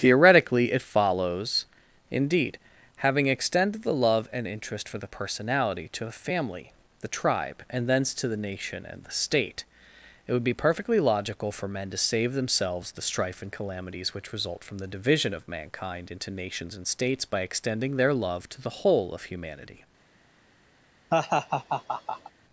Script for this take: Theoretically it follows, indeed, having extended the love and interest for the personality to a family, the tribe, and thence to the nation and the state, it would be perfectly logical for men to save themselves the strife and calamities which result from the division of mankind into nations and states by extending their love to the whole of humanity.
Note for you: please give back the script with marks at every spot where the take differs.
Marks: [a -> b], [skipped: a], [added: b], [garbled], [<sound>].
Theoretically it follows, indeed, having extended the love and interest for the personality to a family, the tribe, and thence to the nation and the state, it would be perfectly logical for men to save themselves the strife and calamities which result from the division of mankind into nations and states by extending their love to the whole of humanity. [laugh]